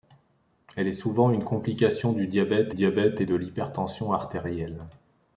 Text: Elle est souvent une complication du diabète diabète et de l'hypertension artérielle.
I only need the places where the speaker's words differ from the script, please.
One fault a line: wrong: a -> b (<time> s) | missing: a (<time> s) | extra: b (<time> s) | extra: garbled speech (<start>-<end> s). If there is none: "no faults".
no faults